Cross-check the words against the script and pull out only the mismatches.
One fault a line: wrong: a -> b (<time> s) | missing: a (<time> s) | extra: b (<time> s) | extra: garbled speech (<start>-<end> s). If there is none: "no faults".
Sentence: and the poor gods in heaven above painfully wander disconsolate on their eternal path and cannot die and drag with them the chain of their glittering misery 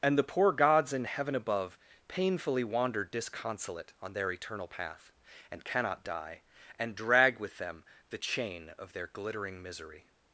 no faults